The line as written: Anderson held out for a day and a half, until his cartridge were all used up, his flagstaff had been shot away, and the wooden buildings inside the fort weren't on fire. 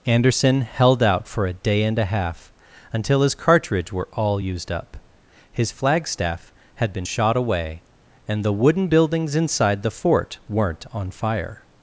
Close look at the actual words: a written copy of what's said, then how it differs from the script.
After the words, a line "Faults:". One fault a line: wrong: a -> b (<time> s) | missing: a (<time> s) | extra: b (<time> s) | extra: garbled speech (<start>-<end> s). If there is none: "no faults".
Anderson held out for a day and a half, until his cartridge were all used up, his flagstaff had been shot away, and the wooden buildings inside the fort weren't on fire.
Faults:
no faults